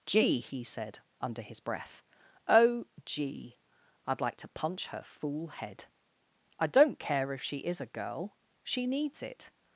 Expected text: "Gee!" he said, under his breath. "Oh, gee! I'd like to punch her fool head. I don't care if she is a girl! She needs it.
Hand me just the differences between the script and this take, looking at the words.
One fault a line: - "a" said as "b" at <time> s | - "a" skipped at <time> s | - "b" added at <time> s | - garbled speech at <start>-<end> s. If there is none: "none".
none